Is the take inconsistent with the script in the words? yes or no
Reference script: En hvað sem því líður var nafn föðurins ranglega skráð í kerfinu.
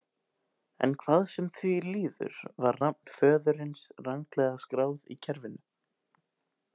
no